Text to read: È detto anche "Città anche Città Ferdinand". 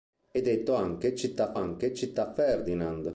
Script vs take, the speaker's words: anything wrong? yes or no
no